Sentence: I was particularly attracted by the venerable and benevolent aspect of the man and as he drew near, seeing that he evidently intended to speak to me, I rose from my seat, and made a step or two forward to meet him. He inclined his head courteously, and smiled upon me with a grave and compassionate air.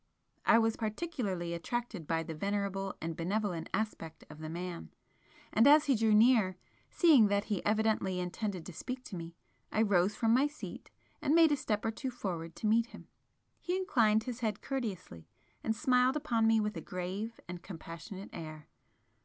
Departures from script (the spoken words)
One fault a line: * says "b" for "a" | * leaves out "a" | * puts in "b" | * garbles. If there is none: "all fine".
all fine